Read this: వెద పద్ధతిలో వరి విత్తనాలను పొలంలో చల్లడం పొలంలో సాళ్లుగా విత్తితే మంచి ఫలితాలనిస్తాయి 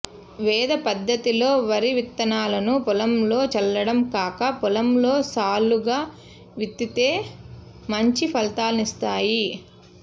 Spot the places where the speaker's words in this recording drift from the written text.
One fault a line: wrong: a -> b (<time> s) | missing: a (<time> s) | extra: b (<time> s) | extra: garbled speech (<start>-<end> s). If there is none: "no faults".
extra: కాక (4.1 s)